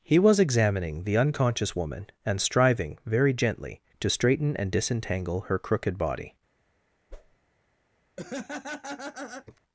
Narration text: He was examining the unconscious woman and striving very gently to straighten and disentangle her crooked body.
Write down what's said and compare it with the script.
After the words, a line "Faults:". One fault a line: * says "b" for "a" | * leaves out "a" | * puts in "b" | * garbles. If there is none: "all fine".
He was examining the unconscious woman and striving very gently to straighten and disentangle her crooked body.
Faults:
all fine